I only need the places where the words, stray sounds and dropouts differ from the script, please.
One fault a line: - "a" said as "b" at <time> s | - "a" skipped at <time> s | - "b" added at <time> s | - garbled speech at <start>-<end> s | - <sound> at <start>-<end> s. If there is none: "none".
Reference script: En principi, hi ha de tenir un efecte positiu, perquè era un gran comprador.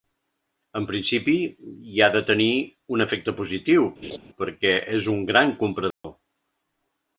- laugh at 4.0-4.2 s
- "era" said as "és" at 5.0 s
- dropout at 5.9-6.0 s